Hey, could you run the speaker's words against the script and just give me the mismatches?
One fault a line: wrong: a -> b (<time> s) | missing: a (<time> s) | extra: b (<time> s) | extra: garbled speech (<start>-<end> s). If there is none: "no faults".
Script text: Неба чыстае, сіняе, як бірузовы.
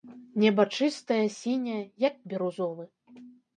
no faults